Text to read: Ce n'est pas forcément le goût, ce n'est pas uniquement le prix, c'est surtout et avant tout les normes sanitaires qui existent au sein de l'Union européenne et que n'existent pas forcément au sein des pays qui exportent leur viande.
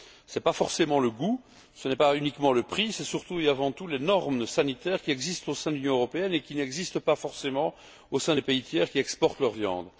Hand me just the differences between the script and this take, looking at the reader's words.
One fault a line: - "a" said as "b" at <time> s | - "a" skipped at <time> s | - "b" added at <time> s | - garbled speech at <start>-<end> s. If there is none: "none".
- "que" said as "qui" at 6.4 s
- "tiers" added at 8.6 s